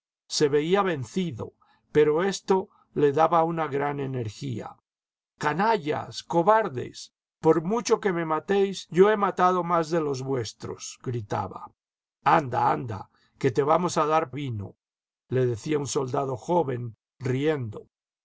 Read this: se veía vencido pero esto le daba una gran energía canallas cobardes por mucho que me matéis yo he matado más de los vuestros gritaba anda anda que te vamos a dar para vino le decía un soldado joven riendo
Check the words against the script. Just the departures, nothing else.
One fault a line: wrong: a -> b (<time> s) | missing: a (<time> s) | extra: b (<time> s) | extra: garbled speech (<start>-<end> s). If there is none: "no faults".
missing: para (14.3 s)